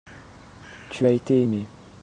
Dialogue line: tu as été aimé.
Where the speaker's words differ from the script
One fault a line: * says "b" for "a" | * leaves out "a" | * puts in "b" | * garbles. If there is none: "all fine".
all fine